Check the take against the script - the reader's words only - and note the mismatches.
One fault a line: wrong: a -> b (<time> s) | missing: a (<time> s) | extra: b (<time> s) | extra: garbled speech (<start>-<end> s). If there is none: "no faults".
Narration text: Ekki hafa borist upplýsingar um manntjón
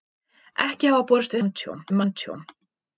wrong: upplýsingar -> manntjón (1.4 s)